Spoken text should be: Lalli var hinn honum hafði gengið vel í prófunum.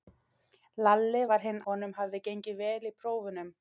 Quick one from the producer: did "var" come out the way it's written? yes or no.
yes